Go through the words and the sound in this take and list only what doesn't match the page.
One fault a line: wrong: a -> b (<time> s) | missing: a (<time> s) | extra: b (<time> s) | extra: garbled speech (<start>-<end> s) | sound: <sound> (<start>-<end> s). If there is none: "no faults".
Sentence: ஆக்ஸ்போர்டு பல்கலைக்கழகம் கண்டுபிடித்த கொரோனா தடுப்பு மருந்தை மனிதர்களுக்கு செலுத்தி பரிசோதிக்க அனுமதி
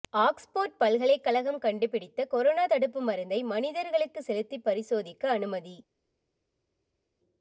no faults